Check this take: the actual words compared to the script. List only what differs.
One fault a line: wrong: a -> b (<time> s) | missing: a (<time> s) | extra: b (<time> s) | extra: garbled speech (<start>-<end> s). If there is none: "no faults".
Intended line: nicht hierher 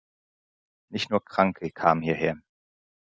extra: nur kranke kamen (1.1 s)